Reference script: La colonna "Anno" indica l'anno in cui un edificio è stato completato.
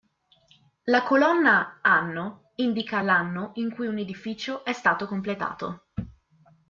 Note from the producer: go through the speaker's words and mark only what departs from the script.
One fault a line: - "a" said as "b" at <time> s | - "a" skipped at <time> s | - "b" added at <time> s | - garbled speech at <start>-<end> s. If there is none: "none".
none